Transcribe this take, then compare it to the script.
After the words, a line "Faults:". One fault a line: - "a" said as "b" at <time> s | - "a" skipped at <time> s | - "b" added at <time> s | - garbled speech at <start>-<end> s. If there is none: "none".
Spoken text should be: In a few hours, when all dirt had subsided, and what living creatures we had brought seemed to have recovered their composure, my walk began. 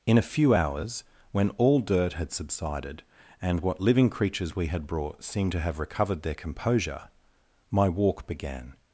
In a few hours, when all dirt had subsided, and what living creatures we had brought seemed to have recovered their composure, my walk began.
Faults:
none